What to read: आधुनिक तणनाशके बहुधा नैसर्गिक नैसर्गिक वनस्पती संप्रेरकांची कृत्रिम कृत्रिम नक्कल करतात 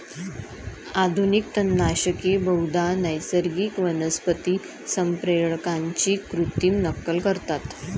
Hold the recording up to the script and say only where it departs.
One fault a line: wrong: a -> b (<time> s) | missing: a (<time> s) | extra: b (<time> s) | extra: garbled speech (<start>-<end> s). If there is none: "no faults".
missing: नैसर्गिक (3.8 s)
missing: कृत्रिम (6.8 s)